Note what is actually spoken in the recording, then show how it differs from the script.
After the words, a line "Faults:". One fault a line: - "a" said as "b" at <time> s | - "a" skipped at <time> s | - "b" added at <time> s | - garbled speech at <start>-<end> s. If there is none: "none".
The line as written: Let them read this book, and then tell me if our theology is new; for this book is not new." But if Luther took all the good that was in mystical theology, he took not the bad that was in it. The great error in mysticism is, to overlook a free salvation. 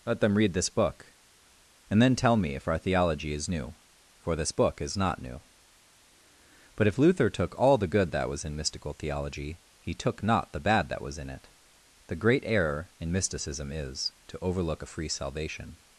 Let them read this book, and then tell me if our theology is new; for this book is not new." But if Luther took all the good that was in mystical theology, he took not the bad that was in it. The great error in mysticism is, to overlook a free salvation.
Faults:
none